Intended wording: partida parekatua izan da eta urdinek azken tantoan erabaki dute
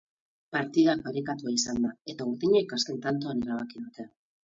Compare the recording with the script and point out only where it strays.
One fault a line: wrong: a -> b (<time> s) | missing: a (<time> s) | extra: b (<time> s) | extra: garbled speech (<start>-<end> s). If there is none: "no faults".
no faults